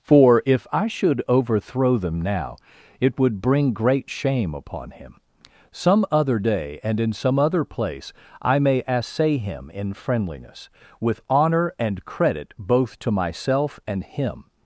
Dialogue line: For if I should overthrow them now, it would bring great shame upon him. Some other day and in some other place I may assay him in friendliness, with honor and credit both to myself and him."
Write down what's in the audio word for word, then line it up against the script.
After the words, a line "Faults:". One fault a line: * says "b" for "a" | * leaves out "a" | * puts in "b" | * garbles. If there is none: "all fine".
For if I should overthrow them now, it would bring great shame upon him. Some other day and in some other place I may assay him in friendliness, with honor and credit both to myself and him."
Faults:
all fine